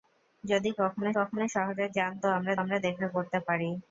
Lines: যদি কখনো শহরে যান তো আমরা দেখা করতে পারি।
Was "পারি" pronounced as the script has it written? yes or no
yes